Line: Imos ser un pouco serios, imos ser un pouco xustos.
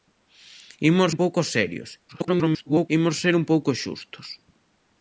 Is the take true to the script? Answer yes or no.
no